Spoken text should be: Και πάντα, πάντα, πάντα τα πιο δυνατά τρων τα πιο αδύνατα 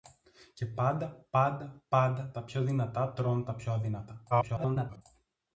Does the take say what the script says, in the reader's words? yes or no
no